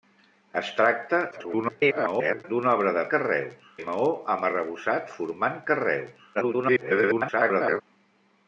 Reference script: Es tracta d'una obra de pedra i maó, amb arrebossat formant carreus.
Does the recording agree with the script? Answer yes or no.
no